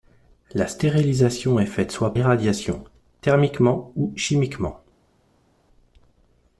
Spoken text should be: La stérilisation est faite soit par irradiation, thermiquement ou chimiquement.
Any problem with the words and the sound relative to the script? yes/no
yes